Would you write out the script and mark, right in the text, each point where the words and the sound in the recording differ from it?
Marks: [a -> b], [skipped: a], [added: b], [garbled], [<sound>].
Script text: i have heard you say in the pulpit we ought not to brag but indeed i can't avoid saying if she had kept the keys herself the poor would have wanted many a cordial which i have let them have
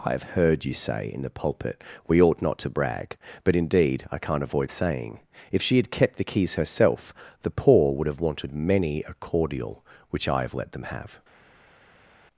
i have heard you say in the pulpit we ought not to brag but indeed i can't avoid saying if she had kept the keys herself the poor would have wanted many a cordial which i have let them have